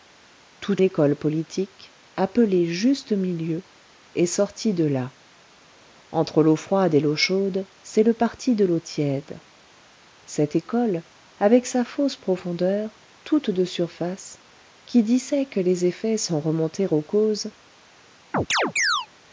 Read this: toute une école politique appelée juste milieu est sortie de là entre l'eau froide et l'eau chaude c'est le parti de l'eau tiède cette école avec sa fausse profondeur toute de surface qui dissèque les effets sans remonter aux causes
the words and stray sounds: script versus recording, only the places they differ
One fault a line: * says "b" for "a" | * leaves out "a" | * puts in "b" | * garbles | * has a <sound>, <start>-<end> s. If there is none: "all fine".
* leaves out "une"
* has a chirp, 18.3-19.1 s